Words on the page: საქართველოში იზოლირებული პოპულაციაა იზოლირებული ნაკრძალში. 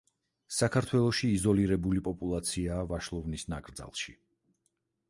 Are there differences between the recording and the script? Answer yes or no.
yes